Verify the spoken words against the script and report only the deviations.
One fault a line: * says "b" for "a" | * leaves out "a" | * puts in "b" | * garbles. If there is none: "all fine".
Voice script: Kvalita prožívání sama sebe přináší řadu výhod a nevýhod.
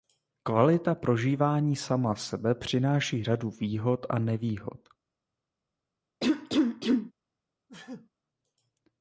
all fine